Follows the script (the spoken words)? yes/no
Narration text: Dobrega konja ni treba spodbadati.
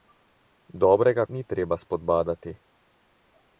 no